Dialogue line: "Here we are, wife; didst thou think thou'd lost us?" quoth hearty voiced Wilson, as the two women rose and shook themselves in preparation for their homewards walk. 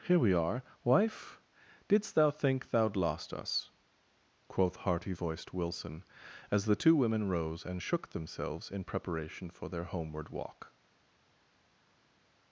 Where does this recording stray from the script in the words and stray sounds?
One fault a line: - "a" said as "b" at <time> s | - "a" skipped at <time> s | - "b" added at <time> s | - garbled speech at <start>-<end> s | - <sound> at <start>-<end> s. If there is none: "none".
- "homewards" said as "homeward" at 9.8 s